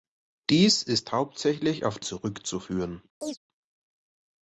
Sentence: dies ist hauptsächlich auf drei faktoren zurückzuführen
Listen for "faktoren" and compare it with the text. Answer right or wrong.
wrong